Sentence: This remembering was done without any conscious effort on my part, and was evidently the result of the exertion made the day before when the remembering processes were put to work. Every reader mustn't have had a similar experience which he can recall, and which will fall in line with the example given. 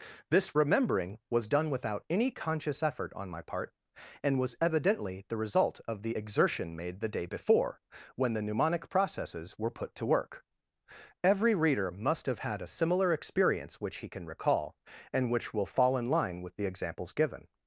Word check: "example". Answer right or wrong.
wrong